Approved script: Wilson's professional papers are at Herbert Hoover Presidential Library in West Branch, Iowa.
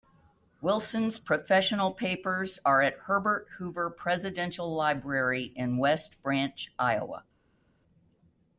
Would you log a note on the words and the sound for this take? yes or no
no